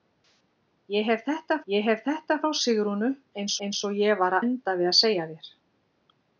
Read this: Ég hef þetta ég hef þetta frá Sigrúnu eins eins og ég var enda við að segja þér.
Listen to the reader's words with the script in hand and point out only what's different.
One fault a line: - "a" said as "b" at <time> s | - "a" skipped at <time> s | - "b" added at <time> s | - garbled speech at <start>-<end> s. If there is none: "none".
none